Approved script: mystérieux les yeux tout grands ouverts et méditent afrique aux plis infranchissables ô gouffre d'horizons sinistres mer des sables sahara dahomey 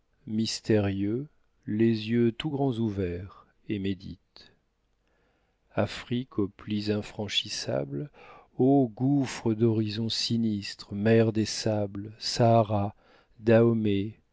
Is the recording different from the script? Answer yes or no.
no